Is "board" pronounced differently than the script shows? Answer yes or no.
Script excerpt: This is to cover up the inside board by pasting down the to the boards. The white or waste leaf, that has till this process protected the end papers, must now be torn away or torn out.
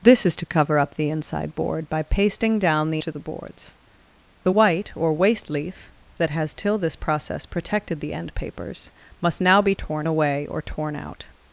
no